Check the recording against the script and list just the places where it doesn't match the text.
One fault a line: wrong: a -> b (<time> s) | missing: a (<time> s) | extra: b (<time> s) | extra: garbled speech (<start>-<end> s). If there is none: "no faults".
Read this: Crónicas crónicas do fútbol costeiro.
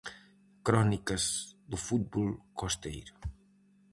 missing: crónicas (1.2 s)